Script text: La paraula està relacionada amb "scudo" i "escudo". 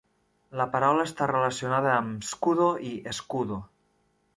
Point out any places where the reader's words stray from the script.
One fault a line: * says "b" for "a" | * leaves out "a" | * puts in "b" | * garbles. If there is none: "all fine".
all fine